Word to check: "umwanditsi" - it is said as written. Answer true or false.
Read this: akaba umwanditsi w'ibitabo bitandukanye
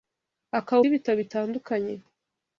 false